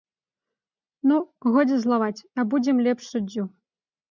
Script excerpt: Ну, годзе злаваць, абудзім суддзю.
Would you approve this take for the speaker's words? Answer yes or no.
no